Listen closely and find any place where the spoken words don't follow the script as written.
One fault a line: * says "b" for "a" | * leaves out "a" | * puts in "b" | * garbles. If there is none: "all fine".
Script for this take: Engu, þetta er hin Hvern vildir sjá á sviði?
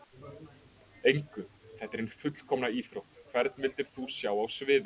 * puts in "fullkomna íþrótt"
* puts in "þú"